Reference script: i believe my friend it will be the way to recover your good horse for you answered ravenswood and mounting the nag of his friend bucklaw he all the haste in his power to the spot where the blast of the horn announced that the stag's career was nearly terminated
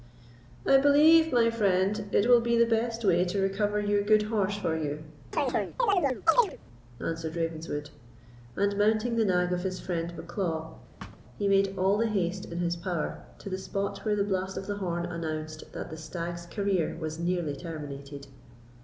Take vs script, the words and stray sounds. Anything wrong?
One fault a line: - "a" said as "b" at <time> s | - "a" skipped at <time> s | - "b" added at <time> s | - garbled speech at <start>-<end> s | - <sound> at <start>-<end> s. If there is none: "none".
- "best" added at 2.6 s
- chirp at 5.3-6.6 s
- thud at 11.0-11.2 s
- "made" added at 11.5 s